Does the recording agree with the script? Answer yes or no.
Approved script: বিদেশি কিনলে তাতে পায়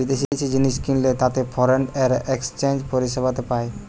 no